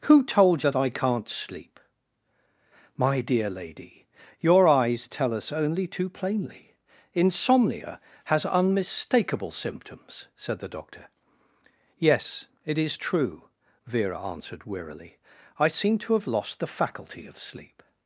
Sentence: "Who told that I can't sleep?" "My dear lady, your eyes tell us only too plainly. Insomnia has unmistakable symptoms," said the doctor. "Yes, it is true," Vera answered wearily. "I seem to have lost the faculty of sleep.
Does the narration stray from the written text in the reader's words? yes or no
no